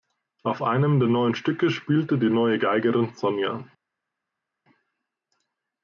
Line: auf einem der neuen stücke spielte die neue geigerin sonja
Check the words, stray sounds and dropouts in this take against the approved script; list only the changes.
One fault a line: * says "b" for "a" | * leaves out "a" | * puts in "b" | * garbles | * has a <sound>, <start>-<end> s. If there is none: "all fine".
all fine